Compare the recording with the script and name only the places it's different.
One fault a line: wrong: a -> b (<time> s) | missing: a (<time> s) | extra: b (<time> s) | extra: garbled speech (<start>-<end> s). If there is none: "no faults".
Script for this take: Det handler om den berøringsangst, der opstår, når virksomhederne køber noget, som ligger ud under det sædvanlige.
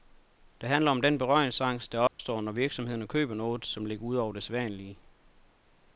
wrong: under -> over (4.2 s)